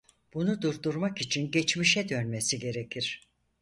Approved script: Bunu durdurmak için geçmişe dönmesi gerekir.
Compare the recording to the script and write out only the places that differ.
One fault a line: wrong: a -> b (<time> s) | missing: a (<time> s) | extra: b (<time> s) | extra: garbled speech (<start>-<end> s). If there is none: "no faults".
no faults